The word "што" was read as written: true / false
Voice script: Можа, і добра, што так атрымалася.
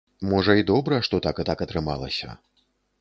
true